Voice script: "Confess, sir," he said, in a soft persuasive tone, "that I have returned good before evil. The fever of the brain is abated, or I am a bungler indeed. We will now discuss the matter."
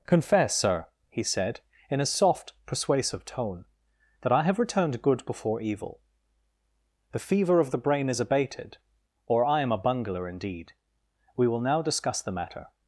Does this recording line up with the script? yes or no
yes